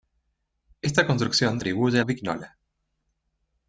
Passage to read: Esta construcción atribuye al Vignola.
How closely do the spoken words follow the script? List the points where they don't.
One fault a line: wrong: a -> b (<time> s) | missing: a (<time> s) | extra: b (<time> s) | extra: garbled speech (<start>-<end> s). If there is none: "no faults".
no faults